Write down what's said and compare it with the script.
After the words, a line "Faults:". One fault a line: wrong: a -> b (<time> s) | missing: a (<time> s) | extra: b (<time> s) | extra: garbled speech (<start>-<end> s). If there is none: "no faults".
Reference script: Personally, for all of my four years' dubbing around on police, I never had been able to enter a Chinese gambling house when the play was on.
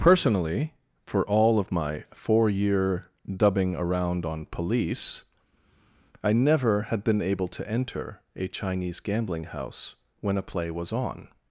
Personally, for all of my four year' dubbing around on police, I never had been able to enter a Chinese gambling house when a play was on.
Faults:
wrong: years -> year (2.5 s)
wrong: the -> a (10.4 s)